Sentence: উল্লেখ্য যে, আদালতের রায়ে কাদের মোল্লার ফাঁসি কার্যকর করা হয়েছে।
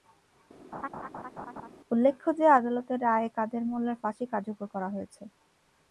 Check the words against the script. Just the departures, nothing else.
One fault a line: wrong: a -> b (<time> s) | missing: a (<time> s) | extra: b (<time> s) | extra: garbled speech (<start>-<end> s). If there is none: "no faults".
no faults